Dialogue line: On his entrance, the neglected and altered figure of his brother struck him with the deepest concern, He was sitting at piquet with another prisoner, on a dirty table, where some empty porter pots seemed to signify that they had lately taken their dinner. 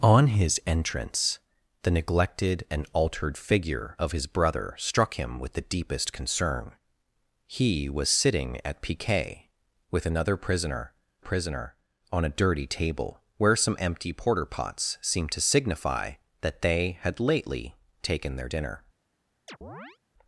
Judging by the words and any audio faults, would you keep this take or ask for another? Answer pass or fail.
fail